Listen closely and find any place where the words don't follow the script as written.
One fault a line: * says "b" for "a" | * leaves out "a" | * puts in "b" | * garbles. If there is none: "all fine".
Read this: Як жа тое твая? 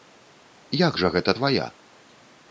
* says "гэта" for "тое"